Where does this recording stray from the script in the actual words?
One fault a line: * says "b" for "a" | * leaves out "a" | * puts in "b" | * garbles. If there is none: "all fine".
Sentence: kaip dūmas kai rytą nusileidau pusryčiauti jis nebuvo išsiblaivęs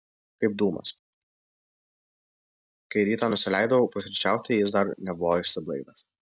* puts in "dar"